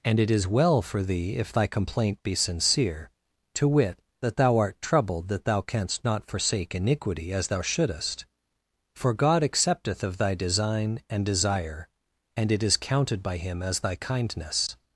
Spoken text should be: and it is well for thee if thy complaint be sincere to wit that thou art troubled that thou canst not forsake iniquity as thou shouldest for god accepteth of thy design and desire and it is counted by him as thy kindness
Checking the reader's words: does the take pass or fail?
pass